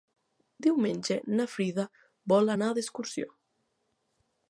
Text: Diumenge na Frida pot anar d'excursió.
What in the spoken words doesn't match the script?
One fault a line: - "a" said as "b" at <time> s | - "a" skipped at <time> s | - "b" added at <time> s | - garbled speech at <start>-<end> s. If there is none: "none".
- "pot" said as "vol" at 2.3 s